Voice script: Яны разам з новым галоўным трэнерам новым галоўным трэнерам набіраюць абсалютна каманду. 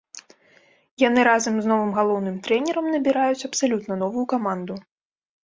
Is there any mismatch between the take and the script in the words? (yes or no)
yes